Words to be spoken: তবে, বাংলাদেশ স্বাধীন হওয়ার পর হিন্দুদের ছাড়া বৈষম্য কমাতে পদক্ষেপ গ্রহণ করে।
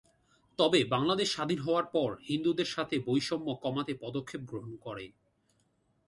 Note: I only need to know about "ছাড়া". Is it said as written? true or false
false